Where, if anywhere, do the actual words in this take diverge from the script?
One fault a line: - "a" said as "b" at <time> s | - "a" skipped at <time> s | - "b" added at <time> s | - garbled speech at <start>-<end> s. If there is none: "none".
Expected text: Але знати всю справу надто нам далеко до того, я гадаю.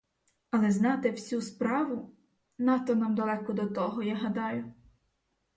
none